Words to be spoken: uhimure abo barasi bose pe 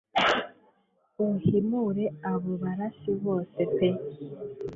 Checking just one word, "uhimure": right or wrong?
right